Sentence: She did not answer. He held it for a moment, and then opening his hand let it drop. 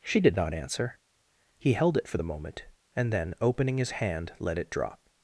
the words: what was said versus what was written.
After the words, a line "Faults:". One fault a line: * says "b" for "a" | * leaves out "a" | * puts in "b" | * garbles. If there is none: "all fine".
She did not answer. He held it for the moment, and then opening his hand let it drop.
Faults:
* says "the" for "a"